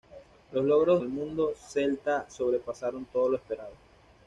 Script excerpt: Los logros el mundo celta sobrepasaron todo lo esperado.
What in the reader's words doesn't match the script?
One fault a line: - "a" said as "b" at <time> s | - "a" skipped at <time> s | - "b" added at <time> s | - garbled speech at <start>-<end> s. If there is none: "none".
none